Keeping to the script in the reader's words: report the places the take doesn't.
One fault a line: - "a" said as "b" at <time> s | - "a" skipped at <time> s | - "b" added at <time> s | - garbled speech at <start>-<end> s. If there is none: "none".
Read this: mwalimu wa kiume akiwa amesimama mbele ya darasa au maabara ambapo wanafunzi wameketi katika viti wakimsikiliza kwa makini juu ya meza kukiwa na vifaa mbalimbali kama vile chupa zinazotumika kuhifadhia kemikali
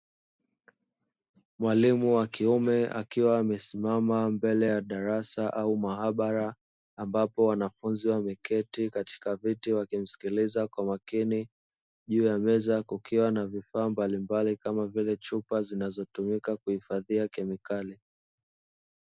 none